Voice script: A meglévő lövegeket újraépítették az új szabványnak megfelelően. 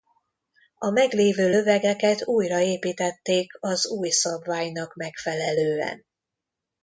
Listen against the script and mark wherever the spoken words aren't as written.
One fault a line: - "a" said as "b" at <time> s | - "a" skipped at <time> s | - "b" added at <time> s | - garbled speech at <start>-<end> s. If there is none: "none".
none